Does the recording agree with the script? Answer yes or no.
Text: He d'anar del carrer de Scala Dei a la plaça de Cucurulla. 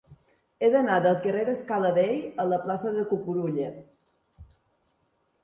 yes